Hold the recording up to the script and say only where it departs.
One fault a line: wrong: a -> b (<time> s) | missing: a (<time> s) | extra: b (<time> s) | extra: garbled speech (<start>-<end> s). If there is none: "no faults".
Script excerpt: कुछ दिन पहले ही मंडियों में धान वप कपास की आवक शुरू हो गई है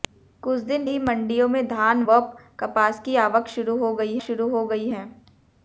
missing: पहले (0.9 s)
extra: शुरू हो गई (4.2 s)